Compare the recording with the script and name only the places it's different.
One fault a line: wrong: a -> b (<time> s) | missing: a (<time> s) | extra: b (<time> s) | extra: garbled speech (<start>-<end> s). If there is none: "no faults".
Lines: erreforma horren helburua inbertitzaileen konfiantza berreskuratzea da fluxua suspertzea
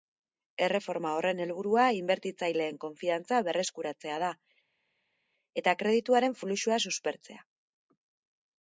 extra: eta kredituaren (5.6 s)